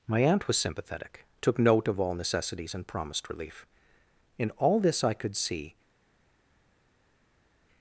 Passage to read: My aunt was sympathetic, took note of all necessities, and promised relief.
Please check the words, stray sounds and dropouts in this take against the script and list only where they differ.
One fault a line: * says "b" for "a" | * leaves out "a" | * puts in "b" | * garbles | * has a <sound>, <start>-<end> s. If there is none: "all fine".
* puts in "In all this I could see"